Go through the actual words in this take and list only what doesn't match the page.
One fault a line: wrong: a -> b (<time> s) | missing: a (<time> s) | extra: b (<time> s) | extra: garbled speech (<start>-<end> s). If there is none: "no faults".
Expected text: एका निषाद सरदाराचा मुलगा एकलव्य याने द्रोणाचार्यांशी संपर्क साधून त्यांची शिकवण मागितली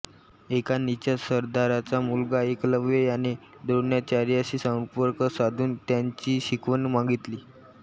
no faults